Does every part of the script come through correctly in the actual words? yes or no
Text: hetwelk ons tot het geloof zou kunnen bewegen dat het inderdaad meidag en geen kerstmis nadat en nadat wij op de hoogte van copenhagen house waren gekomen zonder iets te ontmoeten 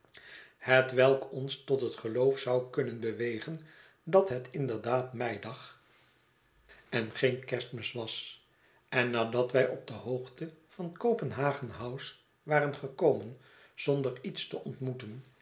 no